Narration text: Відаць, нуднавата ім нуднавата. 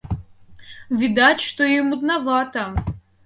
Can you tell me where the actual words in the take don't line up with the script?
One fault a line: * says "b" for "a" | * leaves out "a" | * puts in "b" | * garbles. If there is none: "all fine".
* says "што" for "нуднавата"